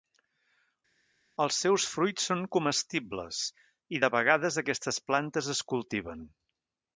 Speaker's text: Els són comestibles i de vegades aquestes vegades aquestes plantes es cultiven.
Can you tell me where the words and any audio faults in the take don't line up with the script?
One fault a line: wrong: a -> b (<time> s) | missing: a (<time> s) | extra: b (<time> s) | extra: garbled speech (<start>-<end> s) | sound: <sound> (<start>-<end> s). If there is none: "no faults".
extra: seus fruits (1.6 s)
missing: vegades aquestes (5.0 s)